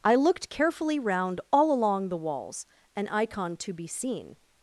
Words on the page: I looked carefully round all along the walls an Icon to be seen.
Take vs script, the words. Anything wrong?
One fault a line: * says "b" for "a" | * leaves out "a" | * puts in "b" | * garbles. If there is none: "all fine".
all fine